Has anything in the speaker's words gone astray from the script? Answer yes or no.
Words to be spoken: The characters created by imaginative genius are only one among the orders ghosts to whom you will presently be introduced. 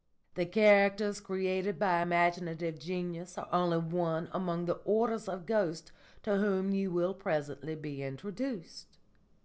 yes